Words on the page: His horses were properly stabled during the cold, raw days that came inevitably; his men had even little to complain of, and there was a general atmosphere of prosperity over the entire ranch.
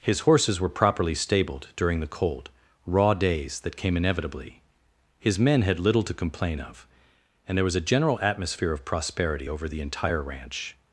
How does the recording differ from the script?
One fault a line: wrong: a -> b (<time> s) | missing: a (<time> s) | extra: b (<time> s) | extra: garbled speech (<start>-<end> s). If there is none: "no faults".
missing: even (5.8 s)